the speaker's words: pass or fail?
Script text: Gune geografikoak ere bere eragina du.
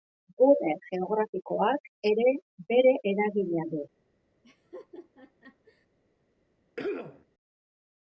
pass